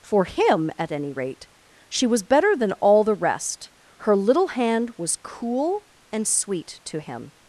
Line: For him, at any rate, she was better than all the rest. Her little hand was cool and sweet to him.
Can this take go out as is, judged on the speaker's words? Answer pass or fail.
pass